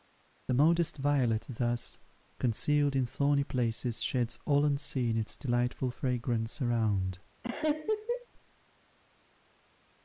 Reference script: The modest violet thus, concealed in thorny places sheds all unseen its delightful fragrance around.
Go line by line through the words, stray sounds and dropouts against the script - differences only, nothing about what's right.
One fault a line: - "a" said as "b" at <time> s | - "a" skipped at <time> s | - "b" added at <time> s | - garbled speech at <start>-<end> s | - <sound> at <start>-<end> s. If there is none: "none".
- laugh at 7.4-8.3 s